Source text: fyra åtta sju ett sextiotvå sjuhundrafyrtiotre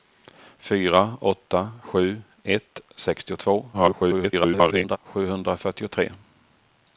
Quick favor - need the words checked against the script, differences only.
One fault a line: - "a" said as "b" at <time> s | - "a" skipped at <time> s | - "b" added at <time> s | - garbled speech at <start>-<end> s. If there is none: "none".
- garbled speech at 3.7-5.0 s